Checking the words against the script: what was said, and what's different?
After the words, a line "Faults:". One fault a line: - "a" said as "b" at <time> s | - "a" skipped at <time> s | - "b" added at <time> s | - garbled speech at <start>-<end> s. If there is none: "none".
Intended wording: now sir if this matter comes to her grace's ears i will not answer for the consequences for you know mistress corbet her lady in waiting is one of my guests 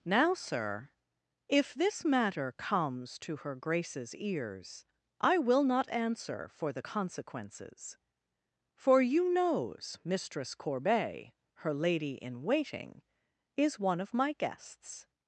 now sir if this matter comes to her grace's ears i will not answer for the consequences for you knows mistress corbet her lady in waiting is one of my guests
Faults:
- "know" said as "knows" at 9.3 s